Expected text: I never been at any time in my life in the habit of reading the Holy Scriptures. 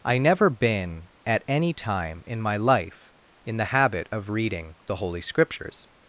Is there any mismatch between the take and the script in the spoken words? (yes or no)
no